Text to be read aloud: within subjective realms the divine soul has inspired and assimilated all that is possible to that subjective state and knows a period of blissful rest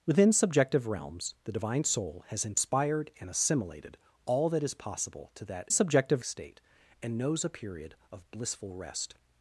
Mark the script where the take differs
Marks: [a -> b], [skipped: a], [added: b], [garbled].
within subjective realms the divine soul has inspired and assimilated all that is possible to that subjective state and knows a period of blissful rest